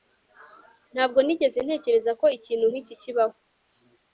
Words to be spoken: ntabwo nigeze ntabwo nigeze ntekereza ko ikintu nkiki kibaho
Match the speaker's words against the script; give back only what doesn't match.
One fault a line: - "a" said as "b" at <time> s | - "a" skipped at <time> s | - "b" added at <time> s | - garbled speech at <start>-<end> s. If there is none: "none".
- "ntabwo nigeze" skipped at 1.6 s